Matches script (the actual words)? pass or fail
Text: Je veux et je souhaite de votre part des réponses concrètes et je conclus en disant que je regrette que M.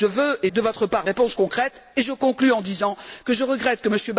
fail